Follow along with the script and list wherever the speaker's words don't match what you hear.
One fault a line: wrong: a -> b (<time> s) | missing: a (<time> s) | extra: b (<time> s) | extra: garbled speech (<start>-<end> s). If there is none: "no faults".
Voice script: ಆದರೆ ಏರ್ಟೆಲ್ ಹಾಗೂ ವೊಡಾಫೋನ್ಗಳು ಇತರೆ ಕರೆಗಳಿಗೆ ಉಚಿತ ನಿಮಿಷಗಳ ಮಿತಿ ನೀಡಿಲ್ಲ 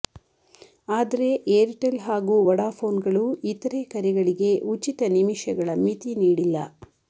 no faults